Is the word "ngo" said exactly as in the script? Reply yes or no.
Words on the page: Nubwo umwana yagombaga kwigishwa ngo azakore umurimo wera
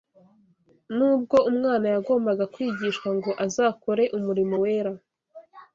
yes